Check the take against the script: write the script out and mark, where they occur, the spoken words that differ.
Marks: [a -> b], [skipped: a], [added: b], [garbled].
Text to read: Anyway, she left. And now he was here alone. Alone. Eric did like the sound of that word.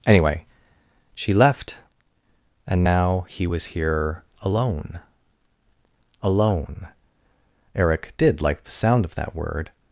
Anyway, she left. And now he was here alone. Alone. Eric did like the sound of that word.